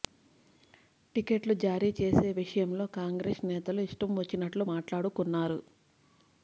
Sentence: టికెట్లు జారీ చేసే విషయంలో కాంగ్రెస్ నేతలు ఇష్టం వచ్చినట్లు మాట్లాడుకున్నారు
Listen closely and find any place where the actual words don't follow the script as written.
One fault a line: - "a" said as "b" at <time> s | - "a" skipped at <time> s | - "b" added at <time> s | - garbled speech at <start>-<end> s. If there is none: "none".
none